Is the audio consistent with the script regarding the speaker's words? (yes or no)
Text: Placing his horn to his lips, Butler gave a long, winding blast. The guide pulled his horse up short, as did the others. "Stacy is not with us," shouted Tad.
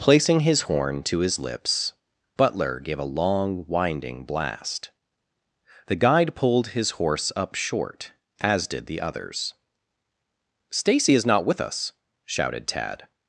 yes